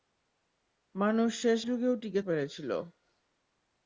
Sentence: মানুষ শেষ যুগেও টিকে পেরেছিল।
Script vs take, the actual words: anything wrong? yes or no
no